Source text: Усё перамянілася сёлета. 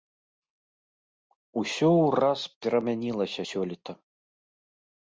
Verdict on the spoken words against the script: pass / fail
fail